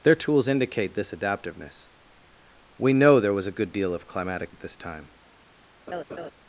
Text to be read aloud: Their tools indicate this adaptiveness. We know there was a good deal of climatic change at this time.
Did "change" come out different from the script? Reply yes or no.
yes